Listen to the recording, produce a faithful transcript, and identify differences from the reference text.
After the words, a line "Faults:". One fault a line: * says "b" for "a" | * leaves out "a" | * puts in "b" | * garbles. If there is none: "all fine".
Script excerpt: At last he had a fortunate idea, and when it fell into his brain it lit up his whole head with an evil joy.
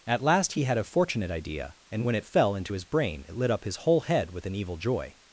At last he had a fortunate idea, and when it fell into his brain it lit up his whole head with an evil joy.
Faults:
all fine